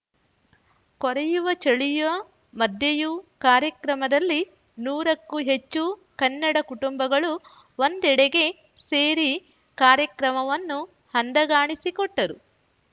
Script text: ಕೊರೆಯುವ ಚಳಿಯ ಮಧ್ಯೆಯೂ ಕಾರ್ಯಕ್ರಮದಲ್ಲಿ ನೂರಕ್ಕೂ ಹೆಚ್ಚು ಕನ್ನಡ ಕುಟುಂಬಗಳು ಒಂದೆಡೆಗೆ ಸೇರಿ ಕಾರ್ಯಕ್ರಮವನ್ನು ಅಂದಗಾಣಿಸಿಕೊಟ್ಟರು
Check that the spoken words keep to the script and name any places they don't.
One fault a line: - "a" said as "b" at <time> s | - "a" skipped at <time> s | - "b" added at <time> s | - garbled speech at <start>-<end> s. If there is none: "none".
none